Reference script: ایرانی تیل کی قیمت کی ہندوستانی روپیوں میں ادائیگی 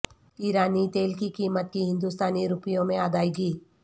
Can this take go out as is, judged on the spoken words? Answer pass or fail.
pass